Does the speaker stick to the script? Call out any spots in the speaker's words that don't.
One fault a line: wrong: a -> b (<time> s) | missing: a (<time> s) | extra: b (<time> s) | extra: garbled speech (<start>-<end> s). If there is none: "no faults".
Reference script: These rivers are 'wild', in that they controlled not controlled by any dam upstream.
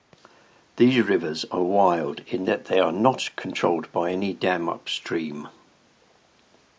wrong: controlled -> are (2.8 s)